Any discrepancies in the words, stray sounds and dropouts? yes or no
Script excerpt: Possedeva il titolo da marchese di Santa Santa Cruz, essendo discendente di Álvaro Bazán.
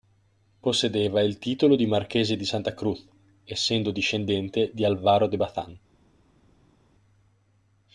yes